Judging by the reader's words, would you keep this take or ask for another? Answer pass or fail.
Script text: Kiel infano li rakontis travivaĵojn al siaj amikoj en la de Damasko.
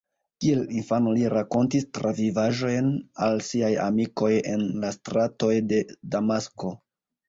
fail